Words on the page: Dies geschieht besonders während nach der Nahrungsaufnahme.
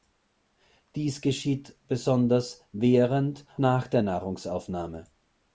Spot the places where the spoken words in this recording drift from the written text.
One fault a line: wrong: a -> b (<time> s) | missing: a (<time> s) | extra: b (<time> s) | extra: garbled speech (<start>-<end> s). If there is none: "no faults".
no faults